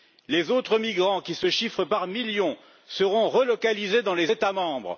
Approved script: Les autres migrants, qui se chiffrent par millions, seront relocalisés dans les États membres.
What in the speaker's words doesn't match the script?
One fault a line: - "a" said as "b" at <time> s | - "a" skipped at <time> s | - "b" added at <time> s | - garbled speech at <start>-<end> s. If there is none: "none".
none